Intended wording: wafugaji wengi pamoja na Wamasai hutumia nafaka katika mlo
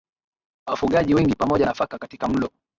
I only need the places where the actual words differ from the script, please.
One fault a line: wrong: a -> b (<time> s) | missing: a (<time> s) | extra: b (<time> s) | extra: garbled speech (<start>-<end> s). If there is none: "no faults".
missing: na Wamasai hutumia (1.7 s)